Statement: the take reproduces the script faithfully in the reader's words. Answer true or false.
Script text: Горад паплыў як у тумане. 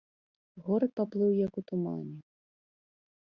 true